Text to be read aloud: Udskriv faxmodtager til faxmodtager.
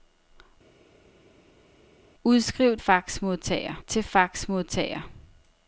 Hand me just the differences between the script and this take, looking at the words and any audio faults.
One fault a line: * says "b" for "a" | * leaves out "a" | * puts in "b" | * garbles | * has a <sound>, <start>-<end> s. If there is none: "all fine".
all fine